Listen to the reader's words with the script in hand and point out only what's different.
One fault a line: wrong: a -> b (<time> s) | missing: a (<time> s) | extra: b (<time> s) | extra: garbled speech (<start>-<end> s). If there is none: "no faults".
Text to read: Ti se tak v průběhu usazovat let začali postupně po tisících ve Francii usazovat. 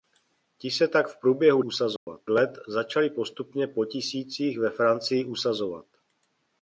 no faults